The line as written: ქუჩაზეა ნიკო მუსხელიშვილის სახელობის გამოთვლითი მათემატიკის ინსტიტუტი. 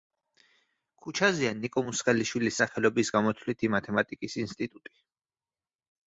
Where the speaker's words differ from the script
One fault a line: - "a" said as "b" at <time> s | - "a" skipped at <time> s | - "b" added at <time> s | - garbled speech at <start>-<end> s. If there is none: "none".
none